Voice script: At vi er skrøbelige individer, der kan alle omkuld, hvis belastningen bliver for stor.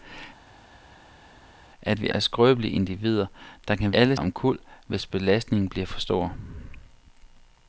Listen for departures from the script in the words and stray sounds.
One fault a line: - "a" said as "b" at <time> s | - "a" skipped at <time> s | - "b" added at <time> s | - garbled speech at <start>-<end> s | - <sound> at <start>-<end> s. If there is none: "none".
none